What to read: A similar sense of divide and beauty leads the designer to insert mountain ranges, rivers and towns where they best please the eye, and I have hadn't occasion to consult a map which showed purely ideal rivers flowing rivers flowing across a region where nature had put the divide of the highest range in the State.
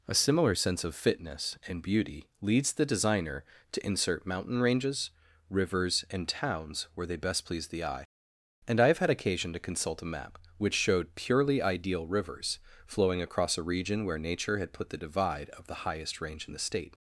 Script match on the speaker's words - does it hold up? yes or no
no